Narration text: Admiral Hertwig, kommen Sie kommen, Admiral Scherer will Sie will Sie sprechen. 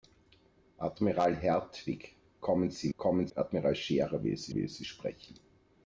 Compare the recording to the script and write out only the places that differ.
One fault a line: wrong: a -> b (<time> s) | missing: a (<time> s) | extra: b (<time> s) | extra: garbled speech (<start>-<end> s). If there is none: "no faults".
no faults